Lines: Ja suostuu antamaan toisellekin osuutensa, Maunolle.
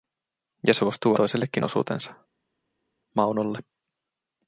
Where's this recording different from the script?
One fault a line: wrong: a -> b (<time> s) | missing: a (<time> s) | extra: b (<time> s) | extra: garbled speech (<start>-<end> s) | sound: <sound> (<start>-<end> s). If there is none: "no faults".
missing: antamaan (1.1 s)